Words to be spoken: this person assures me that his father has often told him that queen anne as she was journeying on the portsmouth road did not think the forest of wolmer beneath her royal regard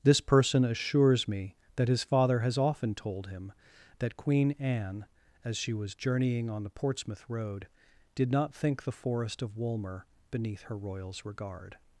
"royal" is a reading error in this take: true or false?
true